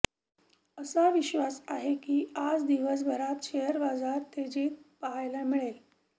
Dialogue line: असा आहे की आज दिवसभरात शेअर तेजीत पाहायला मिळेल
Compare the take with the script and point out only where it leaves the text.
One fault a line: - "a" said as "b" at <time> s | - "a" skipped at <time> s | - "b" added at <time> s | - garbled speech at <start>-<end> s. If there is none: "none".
- "विश्वास" added at 1.1 s
- "बाजार" added at 3.8 s